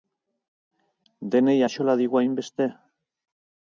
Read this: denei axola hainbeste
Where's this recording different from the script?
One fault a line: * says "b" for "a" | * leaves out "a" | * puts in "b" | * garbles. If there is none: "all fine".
* puts in "digu"